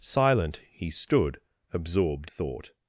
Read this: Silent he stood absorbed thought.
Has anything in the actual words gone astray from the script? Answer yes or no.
no